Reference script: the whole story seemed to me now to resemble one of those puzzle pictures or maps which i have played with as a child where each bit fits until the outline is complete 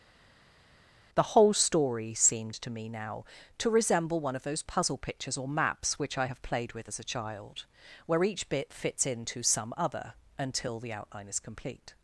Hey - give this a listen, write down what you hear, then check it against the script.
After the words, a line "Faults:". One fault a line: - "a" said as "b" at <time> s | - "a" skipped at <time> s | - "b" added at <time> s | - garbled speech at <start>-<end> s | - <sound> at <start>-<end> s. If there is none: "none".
the whole story seemed to me now to resemble one of those puzzle pictures or maps which i have played with as a child where each bit fits into some other until the outline is complete
Faults:
- "into some other" added at 9.0 s